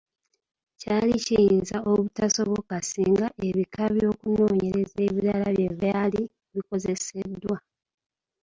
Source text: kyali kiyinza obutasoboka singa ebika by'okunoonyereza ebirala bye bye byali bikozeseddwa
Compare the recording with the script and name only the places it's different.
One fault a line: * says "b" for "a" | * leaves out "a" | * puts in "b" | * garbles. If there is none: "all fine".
* leaves out "bye"